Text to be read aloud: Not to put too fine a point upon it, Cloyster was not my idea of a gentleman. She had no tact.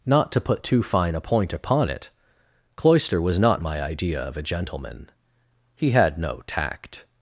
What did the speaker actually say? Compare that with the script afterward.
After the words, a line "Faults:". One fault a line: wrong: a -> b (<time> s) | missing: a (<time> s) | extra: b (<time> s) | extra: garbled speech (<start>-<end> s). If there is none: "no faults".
Not to put too fine a point upon it, Cloyster was not my idea of a gentleman. He had no tact.
Faults:
wrong: She -> He (5.8 s)